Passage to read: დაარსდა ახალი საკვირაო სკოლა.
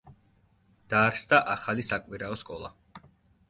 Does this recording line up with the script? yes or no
yes